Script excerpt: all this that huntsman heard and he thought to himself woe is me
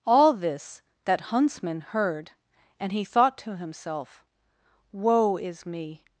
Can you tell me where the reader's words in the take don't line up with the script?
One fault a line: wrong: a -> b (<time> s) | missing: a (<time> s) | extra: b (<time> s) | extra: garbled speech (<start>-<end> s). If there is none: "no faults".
no faults